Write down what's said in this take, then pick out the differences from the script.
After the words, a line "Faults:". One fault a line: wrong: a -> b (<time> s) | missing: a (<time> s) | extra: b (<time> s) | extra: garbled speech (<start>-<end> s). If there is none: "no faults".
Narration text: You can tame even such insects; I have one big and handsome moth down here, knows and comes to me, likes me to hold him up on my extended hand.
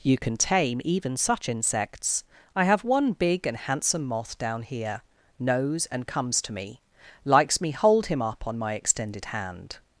You can tame even such insects; I have one big and handsome moth down here, knows and comes to me, likes me hold him up on my extended hand.
Faults:
missing: to (7.7 s)